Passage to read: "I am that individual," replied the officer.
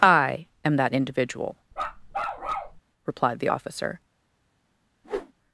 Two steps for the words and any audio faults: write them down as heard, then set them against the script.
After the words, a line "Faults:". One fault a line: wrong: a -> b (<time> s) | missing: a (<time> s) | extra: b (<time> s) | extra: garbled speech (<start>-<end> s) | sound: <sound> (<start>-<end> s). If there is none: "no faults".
"I am that individual," replied the officer.
Faults:
sound: bark (1.7-2.8 s)
sound: whoosh (5.0-5.3 s)